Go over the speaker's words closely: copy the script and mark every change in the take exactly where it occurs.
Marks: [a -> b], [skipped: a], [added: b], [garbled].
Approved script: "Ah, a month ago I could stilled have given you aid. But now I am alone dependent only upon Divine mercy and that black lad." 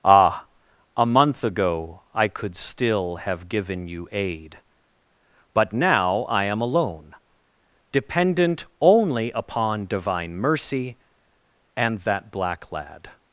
"Ah, a month ago I could [stilled -> still] have given you aid. But now I am alone dependent only upon Divine mercy and that black lad."